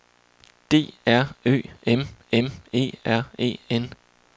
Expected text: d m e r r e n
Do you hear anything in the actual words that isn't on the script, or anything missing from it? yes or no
yes